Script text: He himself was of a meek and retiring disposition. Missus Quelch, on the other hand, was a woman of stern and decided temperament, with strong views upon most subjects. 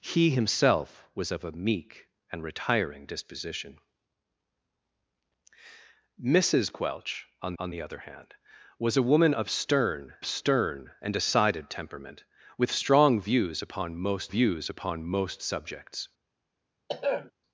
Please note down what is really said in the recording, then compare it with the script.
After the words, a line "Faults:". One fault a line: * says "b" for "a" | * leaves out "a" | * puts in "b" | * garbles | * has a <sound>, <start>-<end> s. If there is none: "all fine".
He himself was of a meek and retiring disposition. Missus Quelch, on on the other hand, was a woman of stern stern and decided temperament, with strong views upon most views upon most subjects.
Faults:
* puts in "on"
* puts in "stern"
* puts in "views upon most"
* has a throat clearing, 16.9-17.3 s